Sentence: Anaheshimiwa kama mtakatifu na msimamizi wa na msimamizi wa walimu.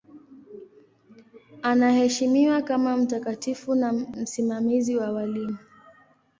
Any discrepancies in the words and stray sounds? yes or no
yes